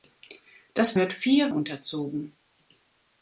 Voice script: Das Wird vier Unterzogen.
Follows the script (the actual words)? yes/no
yes